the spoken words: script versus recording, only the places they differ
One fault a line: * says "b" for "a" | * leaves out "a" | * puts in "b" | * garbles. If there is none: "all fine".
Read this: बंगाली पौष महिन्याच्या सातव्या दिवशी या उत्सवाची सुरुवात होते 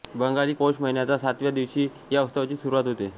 all fine